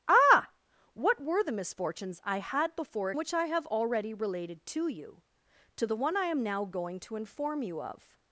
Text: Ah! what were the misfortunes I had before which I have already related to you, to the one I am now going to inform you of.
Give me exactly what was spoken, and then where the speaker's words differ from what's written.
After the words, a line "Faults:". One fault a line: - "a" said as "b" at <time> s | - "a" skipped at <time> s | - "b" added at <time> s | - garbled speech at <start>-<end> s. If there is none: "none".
Ah! what were the misfortunes I had before which I have already related to you, to the one I am now going to inform you of.
Faults:
none